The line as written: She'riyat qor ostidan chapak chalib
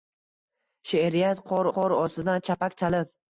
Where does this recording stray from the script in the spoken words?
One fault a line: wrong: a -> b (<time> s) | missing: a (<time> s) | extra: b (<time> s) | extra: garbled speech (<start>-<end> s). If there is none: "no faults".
extra: qor (1.8 s)